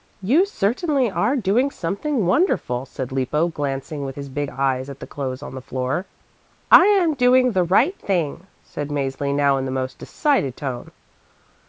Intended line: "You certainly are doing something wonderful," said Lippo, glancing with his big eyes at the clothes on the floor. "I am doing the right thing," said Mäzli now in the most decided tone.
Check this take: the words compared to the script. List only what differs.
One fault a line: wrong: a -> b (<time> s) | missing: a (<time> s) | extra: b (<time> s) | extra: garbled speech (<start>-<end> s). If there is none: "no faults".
no faults